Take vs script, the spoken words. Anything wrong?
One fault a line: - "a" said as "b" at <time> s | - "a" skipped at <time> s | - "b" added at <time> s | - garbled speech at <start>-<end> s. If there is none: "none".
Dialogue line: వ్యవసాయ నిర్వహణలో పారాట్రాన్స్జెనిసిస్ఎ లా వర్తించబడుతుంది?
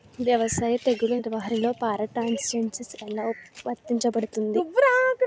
- "తెగుళ్ల" added at 0.8 s